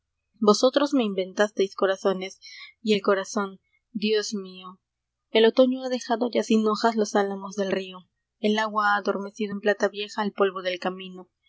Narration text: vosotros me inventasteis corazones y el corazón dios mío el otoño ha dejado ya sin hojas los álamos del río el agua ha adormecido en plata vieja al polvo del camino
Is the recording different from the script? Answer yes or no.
no